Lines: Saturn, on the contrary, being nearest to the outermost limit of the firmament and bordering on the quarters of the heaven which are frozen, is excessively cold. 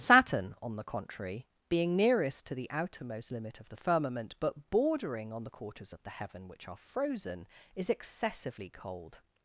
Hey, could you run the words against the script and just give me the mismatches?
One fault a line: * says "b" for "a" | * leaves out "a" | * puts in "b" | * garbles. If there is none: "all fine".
* says "but" for "and"